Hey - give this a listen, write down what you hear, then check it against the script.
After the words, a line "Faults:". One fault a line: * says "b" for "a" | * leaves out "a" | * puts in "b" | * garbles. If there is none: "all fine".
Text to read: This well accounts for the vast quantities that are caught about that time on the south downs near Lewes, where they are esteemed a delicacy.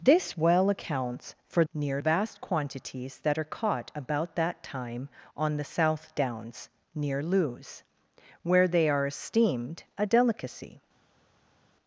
This well accounts for near vast quantities that are caught about that time on the south downs near Lewes, where they are esteemed a delicacy.
Faults:
* says "near" for "the"